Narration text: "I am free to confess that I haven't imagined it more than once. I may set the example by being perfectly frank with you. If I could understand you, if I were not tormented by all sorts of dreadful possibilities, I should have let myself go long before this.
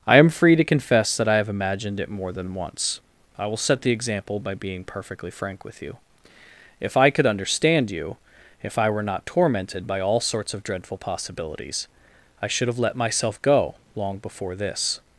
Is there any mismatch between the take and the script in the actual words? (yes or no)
yes